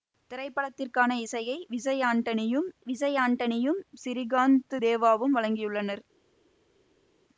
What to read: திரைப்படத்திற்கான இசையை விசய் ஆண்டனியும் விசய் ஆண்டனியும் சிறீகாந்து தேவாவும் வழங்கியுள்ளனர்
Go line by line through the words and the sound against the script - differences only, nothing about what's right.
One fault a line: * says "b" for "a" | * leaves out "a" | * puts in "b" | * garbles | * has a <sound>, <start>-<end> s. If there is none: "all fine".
all fine